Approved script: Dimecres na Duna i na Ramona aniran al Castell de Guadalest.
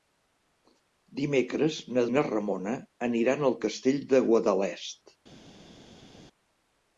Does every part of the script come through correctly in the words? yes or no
no